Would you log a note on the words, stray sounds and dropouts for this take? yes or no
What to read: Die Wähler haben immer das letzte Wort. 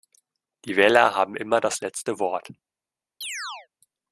yes